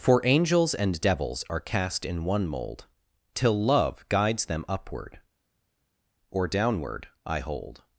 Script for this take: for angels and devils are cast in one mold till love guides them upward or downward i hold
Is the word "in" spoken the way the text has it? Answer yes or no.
yes